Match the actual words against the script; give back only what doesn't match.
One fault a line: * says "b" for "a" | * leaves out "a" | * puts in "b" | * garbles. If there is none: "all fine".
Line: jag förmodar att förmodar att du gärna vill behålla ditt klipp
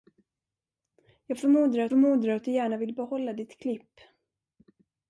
all fine